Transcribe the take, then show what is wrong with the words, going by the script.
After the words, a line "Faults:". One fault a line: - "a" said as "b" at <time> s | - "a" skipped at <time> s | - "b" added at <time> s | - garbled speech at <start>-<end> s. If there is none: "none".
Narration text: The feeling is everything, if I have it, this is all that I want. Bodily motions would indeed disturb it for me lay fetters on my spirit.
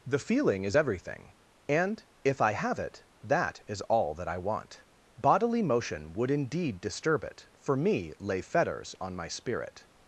The feeling is everything, and if I have it, that is all that I want. Bodily motion would indeed disturb it for me lay fetters on my spirit.
Faults:
- "and" added at 1.7 s
- "this" said as "that" at 3.2 s
- "motions" said as "motion" at 5.6 s